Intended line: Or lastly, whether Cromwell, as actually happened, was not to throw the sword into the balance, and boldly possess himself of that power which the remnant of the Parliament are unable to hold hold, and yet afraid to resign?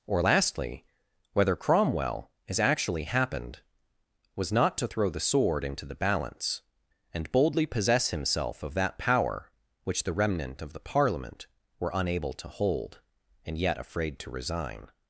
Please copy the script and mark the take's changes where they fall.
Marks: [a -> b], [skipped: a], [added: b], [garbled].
Or lastly, whether Cromwell, as actually happened, was not to throw the sword into the balance, and boldly possess himself of that power which the remnant of the Parliament [are -> were] unable to hold [skipped: hold,] and yet afraid to resign?